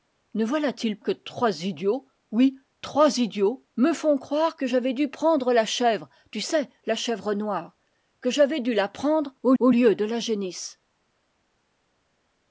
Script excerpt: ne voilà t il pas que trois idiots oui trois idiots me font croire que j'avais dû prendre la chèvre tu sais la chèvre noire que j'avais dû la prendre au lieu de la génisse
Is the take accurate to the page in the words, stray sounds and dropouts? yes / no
no